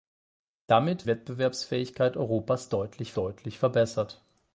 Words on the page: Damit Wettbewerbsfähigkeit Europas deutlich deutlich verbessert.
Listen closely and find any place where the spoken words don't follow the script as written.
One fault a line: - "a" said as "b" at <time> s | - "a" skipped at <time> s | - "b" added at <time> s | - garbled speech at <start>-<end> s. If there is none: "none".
none